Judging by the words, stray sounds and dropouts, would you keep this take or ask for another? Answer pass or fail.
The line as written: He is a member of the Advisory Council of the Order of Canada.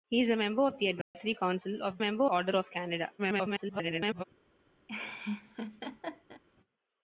fail